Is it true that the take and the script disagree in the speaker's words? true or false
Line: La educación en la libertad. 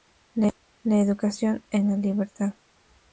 false